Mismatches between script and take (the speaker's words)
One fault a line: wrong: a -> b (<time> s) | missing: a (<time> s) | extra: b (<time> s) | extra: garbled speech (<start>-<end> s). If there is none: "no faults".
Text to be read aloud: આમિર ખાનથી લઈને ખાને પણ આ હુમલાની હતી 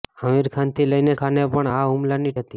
no faults